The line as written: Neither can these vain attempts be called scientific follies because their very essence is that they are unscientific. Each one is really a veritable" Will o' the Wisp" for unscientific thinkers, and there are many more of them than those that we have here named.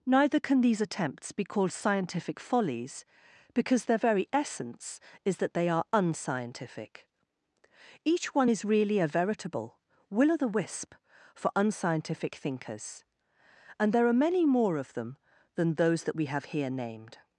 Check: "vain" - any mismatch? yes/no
yes